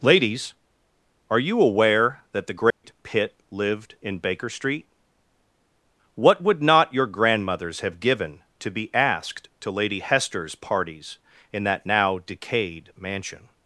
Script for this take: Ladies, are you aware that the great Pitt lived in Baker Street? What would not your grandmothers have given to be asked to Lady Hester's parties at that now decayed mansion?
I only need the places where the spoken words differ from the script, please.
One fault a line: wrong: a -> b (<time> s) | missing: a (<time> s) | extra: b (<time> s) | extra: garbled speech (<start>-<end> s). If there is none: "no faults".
wrong: at -> in (11.5 s)